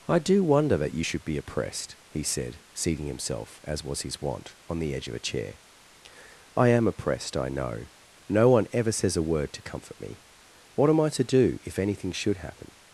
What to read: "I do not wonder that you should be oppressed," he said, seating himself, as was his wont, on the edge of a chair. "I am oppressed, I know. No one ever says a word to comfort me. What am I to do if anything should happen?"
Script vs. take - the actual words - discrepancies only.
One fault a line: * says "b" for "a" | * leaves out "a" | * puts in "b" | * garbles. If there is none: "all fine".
* leaves out "not"